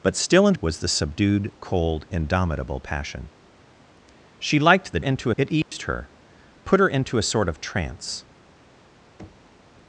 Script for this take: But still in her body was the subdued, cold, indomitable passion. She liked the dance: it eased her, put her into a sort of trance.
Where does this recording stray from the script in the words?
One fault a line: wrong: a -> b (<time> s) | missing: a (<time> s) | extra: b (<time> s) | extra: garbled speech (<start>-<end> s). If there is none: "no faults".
missing: her body (0.6 s)
wrong: dance -> into (5.0 s)